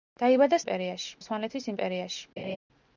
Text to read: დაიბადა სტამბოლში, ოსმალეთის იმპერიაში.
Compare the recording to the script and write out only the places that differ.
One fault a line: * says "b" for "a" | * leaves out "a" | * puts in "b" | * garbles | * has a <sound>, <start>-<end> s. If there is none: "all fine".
* says "იმპერიაში" for "სტამბოლში"
* has a laugh, 2.4-2.6 s